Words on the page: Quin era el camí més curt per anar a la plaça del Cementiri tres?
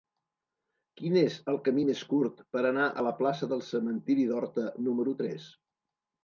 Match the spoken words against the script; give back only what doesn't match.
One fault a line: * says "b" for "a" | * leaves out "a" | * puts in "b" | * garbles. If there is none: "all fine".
* says "és" for "era"
* puts in "d'Horta número"